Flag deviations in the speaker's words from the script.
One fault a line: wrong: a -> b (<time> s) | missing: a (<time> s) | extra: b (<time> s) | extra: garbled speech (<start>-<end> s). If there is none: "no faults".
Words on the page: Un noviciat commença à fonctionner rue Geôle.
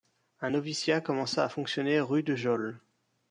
extra: de (2.2 s)